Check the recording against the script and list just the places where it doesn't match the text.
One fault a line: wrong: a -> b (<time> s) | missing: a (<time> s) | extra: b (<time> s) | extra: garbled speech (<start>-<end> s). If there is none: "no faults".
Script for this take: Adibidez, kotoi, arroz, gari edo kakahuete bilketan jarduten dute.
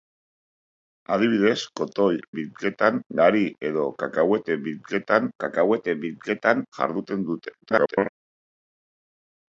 wrong: arroz -> bilketan (2.4 s)
extra: kakahuete bilketan (5.5 s)
extra: garbled speech (7.6-8.1 s)